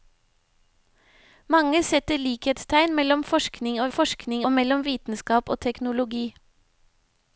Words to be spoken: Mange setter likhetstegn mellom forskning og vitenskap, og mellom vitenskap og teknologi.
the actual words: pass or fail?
fail